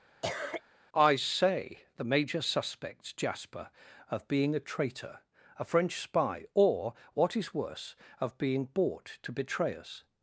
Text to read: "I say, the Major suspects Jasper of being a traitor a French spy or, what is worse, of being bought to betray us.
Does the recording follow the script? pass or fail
pass